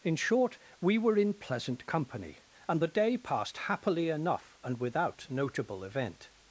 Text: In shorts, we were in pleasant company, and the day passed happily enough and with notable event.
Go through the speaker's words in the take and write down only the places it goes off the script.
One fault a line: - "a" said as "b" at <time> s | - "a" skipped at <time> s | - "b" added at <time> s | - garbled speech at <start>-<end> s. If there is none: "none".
- "shorts" said as "short" at 0.1 s
- "with" said as "without" at 4.8 s